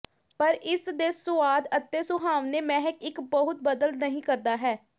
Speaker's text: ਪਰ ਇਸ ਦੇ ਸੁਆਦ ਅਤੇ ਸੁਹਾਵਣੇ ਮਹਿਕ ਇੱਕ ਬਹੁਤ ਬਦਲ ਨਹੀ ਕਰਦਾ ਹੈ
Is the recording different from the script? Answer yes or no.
no